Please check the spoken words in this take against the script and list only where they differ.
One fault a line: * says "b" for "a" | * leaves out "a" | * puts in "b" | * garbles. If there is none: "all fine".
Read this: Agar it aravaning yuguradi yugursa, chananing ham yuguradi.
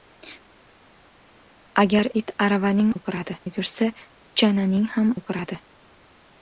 all fine